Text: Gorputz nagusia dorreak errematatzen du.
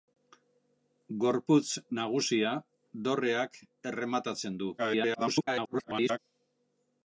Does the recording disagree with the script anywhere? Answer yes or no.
yes